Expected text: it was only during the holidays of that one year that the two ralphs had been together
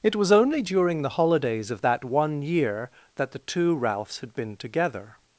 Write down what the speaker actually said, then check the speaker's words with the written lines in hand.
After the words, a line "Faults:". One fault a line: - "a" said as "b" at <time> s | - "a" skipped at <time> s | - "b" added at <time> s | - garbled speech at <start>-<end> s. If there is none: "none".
it was only during the holidays of that one year that the two ralphs had been together
Faults:
none